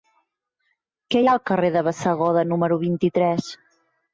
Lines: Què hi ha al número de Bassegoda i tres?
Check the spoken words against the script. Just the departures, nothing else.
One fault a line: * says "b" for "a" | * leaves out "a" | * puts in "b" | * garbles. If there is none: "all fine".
* says "carrer" for "número"
* puts in "número vint"